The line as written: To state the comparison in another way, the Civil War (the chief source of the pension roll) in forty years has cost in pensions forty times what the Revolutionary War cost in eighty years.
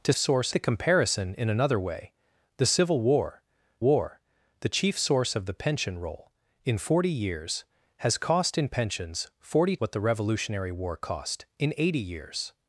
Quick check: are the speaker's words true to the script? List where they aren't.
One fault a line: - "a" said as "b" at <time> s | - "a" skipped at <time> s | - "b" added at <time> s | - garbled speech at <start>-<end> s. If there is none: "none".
- "state" said as "source" at 0.2 s
- "War" added at 3.8 s
- "times" skipped at 9.8 s